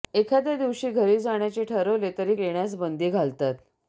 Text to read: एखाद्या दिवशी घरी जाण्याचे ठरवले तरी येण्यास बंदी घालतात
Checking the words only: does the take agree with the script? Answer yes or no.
yes